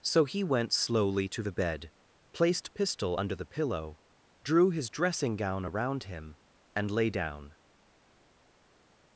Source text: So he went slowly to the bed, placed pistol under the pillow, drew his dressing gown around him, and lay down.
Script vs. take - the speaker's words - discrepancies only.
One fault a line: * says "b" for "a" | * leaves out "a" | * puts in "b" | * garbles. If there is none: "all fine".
all fine